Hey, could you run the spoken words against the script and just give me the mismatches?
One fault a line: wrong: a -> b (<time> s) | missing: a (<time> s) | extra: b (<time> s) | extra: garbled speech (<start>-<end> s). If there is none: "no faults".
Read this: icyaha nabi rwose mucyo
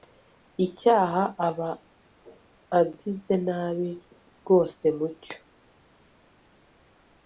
extra: aba agize (1.5 s)